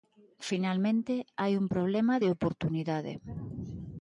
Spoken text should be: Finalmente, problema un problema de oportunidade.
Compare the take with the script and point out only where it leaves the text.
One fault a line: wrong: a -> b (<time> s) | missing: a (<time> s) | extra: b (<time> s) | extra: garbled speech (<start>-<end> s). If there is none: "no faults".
wrong: problema -> hai (1.4 s)